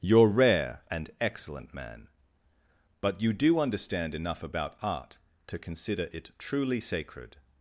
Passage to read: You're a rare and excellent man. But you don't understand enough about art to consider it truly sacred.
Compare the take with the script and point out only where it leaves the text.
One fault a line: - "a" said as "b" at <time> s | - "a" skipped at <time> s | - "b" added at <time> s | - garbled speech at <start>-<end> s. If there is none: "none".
- "a" skipped at 0.3 s
- "don't" said as "do" at 3.3 s